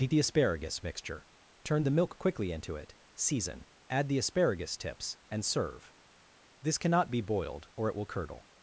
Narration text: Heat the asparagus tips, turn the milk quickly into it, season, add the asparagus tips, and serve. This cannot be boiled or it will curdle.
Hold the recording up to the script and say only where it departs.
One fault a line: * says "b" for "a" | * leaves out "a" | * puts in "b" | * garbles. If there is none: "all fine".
* says "mixture" for "tips"